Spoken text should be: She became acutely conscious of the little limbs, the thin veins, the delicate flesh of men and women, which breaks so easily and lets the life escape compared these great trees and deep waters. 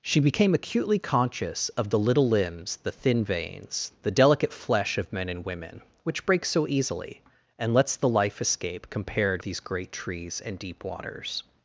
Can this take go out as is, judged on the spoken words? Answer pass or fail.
pass